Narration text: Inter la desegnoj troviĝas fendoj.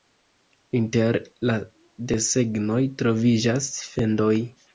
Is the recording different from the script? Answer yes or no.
no